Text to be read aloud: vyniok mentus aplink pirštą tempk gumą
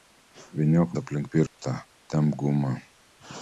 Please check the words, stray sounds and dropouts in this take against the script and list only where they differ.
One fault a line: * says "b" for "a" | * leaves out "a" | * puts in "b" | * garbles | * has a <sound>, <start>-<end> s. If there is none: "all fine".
* leaves out "mentus"
* has a dropout, 1.5-1.6 s